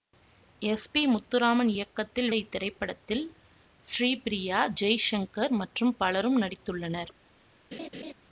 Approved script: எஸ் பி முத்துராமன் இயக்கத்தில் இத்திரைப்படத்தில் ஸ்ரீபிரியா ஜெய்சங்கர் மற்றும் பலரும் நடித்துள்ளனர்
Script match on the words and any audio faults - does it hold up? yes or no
no